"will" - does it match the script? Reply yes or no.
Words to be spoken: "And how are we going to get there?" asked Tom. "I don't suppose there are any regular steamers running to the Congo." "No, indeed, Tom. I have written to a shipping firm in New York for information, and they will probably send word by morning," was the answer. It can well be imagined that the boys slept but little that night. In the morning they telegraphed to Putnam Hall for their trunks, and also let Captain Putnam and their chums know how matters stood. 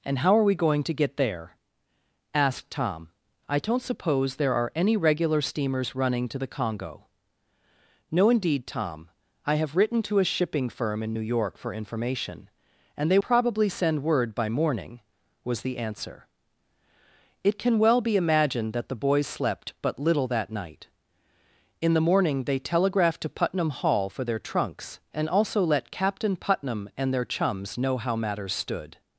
no